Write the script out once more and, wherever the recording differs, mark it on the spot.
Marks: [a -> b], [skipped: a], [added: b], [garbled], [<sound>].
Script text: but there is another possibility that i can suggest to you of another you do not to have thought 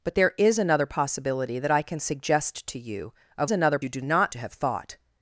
but there is another possibility that i can suggest to you of another you do not to have thought